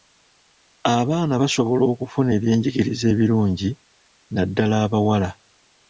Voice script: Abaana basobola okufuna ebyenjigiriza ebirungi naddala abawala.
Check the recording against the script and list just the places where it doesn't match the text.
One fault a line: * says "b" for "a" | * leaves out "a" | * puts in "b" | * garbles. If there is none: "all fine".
all fine